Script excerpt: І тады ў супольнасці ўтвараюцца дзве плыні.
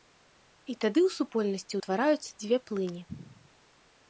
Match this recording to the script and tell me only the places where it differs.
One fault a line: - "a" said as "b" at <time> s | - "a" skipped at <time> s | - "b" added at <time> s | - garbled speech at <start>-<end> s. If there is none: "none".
none